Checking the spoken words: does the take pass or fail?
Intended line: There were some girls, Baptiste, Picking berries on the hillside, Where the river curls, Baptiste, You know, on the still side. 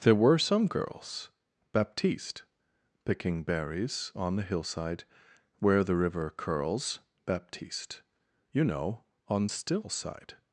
fail